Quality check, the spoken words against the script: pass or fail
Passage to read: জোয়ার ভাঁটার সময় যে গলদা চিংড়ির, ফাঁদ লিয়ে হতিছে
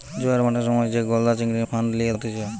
pass